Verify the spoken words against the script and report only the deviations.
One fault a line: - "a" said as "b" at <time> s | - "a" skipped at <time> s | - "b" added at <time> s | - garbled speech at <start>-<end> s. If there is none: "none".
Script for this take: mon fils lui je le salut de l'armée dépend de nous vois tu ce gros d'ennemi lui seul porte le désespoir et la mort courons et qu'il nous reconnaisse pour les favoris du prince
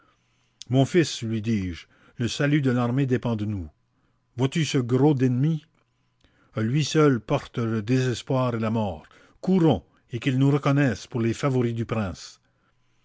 - "dis" added at 1.4 s